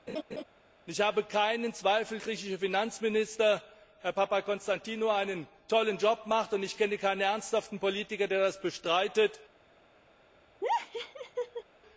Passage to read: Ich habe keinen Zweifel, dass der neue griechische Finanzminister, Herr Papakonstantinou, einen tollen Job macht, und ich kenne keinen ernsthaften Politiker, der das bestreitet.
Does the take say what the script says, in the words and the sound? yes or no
no